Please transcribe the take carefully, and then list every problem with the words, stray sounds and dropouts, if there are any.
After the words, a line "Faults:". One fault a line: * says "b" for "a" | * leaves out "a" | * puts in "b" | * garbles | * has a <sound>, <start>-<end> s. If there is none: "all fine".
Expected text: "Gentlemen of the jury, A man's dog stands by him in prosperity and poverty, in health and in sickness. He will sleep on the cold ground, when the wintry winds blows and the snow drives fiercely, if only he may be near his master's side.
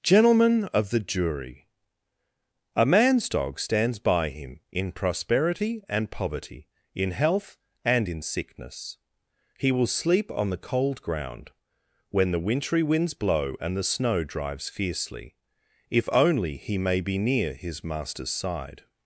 "Gentlemen of the jury, A man's dog stands by him in prosperity and poverty, in health and in sickness. He will sleep on the cold ground, when the wintry winds blow and the snow drives fiercely, if only he may be near his master's side.
Faults:
* says "blow" for "blows"